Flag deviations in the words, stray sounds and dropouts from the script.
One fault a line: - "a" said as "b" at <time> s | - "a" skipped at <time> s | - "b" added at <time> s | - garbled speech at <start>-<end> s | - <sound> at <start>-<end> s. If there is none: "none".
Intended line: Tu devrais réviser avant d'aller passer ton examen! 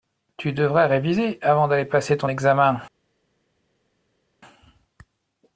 none